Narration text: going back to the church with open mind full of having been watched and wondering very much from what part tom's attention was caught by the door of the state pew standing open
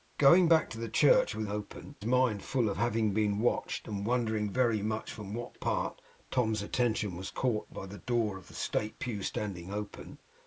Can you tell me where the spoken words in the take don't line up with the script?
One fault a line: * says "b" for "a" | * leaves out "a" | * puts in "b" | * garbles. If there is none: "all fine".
all fine